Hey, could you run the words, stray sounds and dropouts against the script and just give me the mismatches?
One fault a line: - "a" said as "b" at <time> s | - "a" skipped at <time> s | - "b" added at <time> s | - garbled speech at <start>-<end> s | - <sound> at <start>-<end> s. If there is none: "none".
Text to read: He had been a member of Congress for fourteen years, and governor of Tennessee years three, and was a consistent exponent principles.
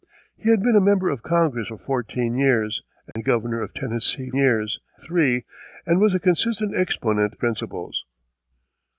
- dropout at 3.1-3.2 s